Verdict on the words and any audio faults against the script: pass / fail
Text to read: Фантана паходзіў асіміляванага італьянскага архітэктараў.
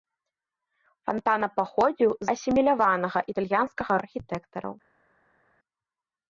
pass